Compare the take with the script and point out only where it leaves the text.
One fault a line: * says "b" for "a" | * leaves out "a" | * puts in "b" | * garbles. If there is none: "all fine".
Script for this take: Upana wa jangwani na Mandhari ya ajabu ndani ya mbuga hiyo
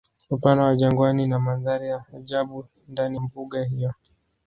* leaves out "ya"